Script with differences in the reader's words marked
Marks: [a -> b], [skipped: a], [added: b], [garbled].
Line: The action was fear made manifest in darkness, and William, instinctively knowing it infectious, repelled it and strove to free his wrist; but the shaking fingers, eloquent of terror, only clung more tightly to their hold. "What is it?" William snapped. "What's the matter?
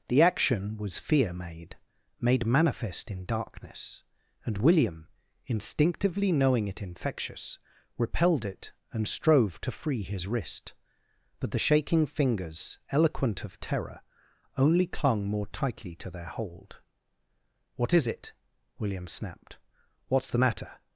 The action was fear made [added: made] manifest in darkness, and William, instinctively knowing it infectious, repelled it and strove to free his wrist; but the shaking fingers, eloquent of terror, only clung more tightly to their hold. "What is it?" William snapped. "What's the matter?